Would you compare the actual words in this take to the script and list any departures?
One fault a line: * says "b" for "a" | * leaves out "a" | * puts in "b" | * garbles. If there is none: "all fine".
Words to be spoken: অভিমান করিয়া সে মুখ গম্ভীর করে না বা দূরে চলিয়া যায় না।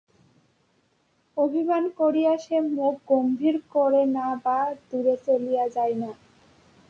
all fine